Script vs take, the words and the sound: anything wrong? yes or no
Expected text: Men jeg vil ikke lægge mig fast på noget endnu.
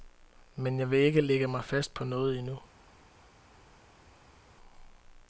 no